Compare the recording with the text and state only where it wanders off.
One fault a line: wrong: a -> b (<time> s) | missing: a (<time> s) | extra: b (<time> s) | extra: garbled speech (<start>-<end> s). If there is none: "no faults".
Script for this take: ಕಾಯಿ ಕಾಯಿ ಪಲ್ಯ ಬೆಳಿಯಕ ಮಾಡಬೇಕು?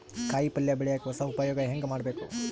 missing: ಕಾಯಿ (0.5 s)
extra: ಹೊಸ ಉಪಯೊಗ ಹೆಂಗ (1.0 s)